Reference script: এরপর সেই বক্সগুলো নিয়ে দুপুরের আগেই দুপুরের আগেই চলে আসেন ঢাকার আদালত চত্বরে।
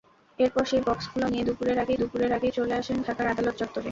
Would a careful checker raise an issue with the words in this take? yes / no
no